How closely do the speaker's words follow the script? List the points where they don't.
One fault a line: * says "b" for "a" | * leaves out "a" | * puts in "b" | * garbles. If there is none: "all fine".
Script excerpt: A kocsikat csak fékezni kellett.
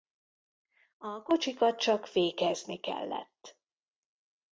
all fine